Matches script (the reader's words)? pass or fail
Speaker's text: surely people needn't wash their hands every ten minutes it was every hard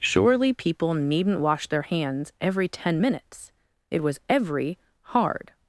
pass